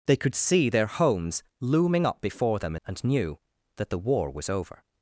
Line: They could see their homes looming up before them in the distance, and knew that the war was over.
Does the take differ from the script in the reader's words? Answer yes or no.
yes